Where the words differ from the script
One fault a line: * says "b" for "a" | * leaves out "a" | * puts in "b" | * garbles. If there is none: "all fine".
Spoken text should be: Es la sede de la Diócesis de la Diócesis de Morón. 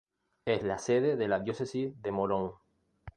* leaves out "la Diócesis de"